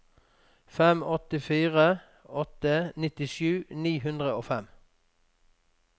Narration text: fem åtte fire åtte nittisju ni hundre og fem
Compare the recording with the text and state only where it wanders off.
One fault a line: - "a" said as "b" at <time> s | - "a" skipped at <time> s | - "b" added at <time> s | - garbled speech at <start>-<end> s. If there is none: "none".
none